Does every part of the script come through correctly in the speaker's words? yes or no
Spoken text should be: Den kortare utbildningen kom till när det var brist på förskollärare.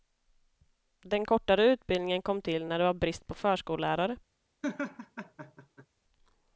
yes